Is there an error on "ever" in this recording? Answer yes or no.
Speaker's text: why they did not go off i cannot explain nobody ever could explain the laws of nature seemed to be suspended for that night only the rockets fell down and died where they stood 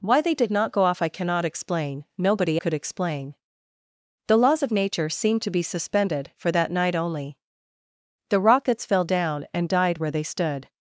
yes